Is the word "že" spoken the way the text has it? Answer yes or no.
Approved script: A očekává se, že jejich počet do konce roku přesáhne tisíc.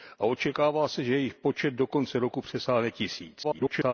yes